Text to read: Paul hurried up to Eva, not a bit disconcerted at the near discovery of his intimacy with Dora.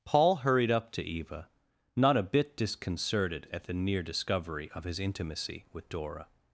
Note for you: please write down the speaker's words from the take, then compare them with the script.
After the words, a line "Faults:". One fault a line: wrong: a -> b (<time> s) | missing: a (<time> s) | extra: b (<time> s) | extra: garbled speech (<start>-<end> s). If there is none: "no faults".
Paul hurried up to Eva, not a bit disconcerted at the near discovery of his intimacy with Dora.
Faults:
no faults